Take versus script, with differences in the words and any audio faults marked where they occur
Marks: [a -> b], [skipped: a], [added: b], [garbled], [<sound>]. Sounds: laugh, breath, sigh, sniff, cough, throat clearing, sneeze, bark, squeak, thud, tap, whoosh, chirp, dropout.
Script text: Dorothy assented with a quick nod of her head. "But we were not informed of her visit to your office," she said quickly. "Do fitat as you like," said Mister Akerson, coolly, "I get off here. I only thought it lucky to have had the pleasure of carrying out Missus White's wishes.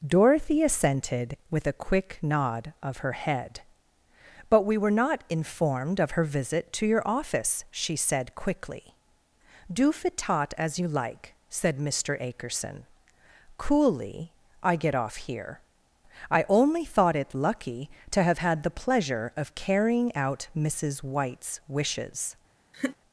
Dorothy assented with a quick nod of her head. "But we were not informed of her visit to your office," she said quickly. "Do fitat as you like," said Mister Akerson, coolly, "I get off here. I only thought it lucky to have had the pleasure of carrying out Missus White's wishes. [laugh]